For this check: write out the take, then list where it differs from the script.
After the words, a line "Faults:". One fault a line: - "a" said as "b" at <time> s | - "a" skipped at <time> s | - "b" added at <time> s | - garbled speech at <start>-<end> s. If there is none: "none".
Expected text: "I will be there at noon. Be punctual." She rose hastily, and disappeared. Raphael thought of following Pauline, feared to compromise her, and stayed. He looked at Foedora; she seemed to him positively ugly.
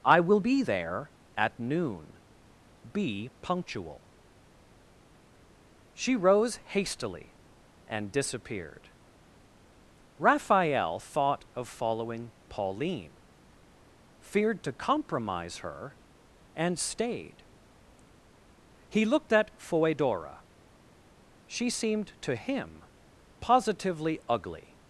"I will be there at noon. Be punctual." She rose hastily, and disappeared. Raphael thought of following Pauline, feared to compromise her, and stayed. He looked at Foedora; she seemed to him positively ugly.
Faults:
none